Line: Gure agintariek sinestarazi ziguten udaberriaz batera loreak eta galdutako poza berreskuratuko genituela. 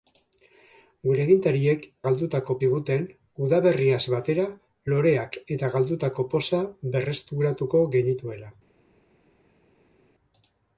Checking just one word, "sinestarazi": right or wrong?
wrong